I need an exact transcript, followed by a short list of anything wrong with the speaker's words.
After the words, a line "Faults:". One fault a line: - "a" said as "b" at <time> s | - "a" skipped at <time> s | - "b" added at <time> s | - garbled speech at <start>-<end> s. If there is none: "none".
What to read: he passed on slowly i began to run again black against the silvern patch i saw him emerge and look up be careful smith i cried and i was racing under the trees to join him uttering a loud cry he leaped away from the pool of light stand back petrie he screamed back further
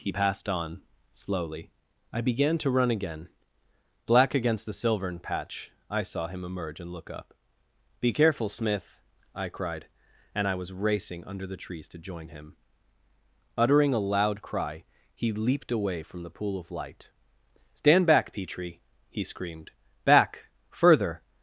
he passed on slowly i began to run again black against the silvern patch i saw him emerge and look up be careful smith i cried and i was racing under the trees to join him uttering a loud cry he leaped away from the pool of light stand back petrie he screamed back further
Faults:
none